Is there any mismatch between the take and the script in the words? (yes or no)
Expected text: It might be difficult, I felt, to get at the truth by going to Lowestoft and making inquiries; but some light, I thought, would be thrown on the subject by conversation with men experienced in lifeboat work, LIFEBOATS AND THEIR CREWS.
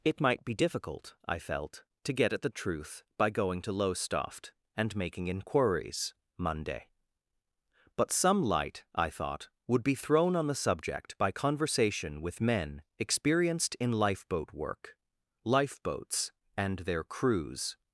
yes